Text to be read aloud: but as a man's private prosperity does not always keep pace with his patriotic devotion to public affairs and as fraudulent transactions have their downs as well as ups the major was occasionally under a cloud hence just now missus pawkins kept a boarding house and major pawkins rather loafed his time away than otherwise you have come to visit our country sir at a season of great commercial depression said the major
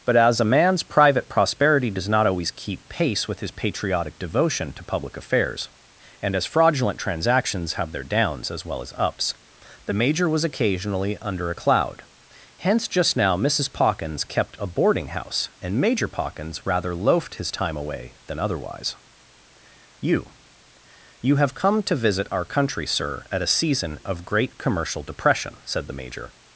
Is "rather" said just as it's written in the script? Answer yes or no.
yes